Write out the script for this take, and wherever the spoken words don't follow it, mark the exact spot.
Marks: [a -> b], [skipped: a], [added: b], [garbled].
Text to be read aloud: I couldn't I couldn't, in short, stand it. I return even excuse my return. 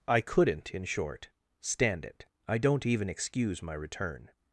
I couldn't [skipped: I couldn't,] in short, stand it. I [return -> don't] even excuse my return.